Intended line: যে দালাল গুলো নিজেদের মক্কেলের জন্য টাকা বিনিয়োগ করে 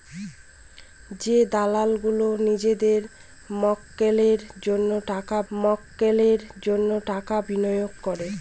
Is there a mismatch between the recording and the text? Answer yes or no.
yes